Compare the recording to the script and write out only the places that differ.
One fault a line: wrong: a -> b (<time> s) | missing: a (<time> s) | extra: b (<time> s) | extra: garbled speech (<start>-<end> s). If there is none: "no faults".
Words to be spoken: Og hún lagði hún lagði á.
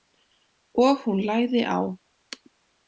missing: hún lagði (1.6 s)